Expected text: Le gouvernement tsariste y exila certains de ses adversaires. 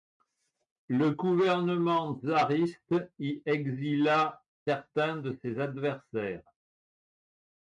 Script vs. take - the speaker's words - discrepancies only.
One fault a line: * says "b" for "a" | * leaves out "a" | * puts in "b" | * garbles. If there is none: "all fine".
all fine